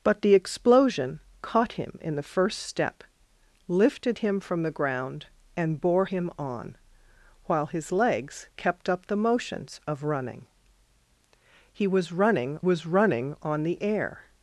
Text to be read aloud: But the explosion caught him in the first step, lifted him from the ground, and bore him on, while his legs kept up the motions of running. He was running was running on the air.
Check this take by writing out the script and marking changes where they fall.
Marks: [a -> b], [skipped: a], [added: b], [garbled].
But the explosion caught him in the first step, lifted him from the ground, and bore him on, while his legs kept up the motions of running. He was running was running on the air.